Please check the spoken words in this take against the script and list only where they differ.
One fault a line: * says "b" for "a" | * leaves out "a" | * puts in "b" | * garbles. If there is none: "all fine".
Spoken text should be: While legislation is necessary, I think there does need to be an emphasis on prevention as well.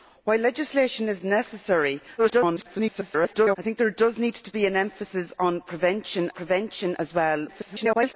* garbles
* puts in "prevention"
* garbles